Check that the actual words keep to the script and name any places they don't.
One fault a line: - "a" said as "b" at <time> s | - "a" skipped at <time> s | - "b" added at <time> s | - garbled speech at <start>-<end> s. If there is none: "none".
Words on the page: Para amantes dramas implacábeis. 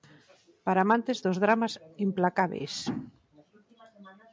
- "dos" added at 1.2 s